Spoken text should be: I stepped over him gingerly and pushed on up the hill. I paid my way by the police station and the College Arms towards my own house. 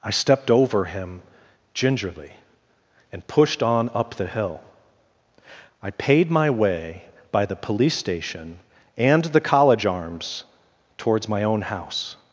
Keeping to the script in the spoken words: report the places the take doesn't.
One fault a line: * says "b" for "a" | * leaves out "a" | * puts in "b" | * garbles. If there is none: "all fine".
all fine